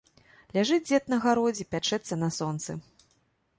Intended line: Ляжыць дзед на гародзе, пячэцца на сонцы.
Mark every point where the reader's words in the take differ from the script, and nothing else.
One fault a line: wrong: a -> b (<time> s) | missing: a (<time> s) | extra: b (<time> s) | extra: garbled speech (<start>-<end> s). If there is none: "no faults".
no faults